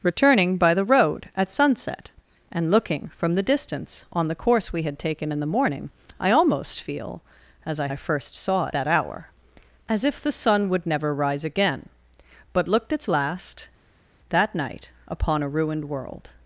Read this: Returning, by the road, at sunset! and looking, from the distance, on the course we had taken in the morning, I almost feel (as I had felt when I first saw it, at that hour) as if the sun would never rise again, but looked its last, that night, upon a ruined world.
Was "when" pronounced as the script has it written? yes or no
no